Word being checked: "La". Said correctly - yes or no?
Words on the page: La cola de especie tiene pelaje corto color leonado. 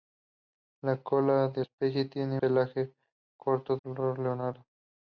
yes